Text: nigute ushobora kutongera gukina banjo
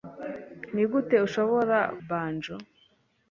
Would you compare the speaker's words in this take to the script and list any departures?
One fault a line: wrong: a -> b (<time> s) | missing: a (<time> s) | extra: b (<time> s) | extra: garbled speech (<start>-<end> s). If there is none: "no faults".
missing: kutongera gukina (1.8 s)